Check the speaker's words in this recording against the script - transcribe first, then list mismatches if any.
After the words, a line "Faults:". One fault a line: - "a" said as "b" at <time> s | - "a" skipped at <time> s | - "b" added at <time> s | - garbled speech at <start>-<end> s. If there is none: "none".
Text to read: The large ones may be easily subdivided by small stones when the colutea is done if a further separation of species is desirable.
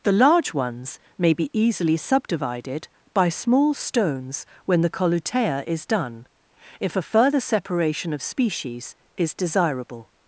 The large ones may be easily subdivided by small stones when the colutea is done if a further separation of species is desirable.
Faults:
none